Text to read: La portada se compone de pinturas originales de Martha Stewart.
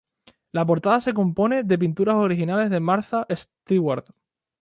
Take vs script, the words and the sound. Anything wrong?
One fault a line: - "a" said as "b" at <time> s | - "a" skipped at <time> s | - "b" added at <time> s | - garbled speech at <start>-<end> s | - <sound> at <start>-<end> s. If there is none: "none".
none